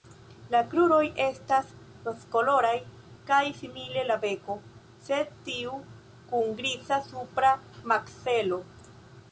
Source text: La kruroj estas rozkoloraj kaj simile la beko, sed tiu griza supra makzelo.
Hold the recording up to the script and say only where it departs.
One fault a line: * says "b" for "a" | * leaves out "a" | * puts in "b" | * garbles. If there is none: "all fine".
* puts in "kun"